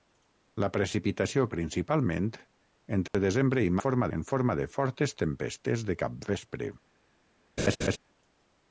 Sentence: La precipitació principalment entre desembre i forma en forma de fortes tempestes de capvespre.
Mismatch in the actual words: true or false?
false